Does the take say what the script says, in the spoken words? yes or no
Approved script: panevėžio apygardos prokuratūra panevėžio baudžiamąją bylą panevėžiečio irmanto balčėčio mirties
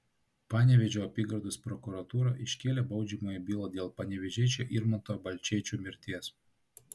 no